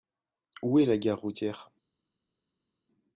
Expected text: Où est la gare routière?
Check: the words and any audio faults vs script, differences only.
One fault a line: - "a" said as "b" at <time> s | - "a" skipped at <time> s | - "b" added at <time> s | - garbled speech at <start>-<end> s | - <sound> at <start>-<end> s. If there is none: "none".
none